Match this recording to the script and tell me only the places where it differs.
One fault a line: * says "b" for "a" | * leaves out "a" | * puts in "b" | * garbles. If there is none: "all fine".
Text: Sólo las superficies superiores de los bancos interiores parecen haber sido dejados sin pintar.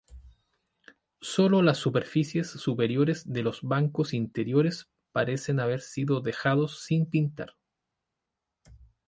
all fine